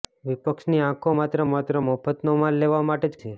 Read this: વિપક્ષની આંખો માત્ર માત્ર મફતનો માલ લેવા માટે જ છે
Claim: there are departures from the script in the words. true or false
false